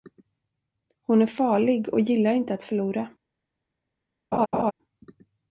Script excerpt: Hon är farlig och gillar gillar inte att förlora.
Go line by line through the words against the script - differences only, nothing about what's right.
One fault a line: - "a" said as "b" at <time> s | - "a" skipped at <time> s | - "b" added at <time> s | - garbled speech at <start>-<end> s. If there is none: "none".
- "gillar" skipped at 2.3 s